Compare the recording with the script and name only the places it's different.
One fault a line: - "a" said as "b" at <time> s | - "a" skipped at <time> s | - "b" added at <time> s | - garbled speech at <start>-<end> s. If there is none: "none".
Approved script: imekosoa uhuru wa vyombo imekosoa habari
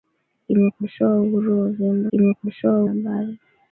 none